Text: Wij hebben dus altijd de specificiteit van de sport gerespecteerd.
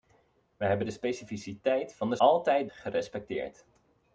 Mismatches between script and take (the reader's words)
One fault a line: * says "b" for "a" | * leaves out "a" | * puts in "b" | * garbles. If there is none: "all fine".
* leaves out "dus altijd"
* says "altijd" for "sport"